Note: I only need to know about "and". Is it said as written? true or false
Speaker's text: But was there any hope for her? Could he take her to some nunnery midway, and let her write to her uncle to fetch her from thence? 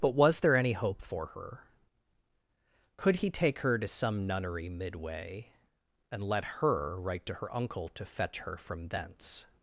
true